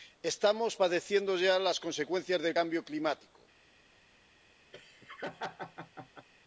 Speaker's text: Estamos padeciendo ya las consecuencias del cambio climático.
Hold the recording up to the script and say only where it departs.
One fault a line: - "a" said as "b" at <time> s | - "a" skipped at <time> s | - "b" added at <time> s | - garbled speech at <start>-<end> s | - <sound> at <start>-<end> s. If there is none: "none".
- laugh at 4.7-6.3 s